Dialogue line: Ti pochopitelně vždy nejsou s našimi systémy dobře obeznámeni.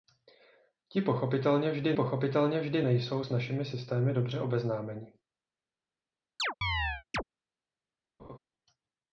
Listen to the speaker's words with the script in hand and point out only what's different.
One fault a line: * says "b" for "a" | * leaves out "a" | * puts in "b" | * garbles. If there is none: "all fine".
* puts in "pochopitelně vždy"